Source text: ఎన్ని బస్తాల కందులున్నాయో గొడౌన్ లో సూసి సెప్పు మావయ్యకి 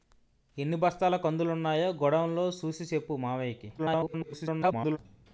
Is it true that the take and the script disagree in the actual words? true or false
true